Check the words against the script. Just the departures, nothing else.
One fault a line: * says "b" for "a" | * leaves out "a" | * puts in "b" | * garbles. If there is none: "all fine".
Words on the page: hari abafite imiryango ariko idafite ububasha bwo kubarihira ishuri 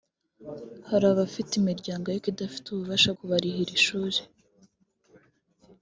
* leaves out "bwo"